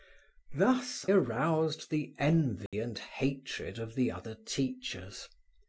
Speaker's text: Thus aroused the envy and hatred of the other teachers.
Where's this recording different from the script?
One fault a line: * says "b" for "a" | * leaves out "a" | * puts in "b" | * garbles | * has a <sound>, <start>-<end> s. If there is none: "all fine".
* has a dropout, 2.7-2.7 s